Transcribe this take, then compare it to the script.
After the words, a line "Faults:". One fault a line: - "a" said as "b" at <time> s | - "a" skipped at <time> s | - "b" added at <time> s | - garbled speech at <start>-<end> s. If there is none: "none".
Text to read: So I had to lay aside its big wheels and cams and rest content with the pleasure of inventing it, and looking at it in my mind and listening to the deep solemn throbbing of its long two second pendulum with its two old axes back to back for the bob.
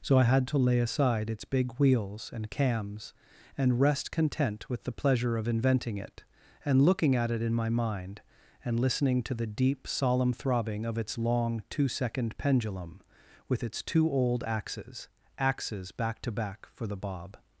So I had to lay aside its big wheels and cams and rest content with the pleasure of inventing it, and looking at it in my mind and listening to the deep solemn throbbing of its long two second pendulum with its two old axes axes back to back for the bob.
Faults:
- "axes" added at 15.4 s